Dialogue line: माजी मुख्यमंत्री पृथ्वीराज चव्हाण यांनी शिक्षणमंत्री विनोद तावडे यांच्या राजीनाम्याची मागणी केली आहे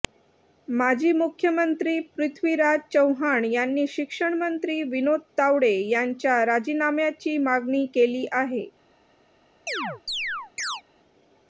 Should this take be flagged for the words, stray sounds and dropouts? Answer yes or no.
yes